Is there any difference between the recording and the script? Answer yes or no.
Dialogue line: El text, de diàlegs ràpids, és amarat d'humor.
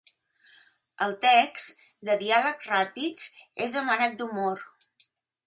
no